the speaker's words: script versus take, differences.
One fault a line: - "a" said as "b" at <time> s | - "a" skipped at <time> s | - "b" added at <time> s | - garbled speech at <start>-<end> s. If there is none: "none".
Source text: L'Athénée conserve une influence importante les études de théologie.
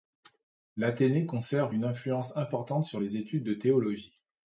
- "sur" added at 2.8 s